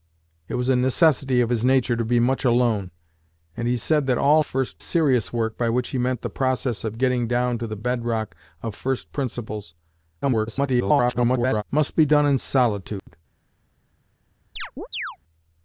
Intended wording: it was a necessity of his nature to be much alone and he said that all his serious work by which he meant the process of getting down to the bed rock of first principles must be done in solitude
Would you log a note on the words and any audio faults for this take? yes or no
yes